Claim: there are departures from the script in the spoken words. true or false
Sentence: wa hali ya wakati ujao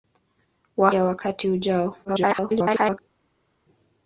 true